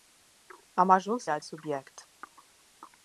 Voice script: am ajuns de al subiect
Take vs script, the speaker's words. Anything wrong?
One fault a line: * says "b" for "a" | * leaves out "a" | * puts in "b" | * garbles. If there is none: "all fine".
all fine